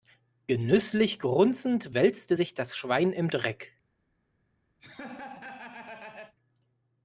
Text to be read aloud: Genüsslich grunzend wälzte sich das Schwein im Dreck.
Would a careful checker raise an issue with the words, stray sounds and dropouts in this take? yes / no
yes